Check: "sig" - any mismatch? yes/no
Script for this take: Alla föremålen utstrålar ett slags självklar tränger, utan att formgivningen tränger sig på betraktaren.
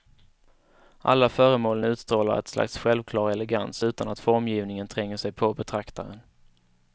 no